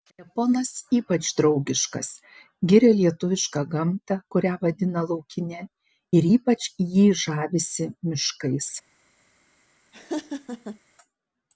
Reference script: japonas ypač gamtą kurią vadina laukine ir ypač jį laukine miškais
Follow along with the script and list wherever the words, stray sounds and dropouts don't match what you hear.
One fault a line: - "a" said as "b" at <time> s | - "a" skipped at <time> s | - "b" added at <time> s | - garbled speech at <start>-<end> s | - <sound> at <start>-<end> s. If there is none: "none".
- "draugiškas giria lietuvišką" added at 1.4 s
- "laukine" said as "žavisi" at 7.3 s
- laugh at 9.9-10.8 s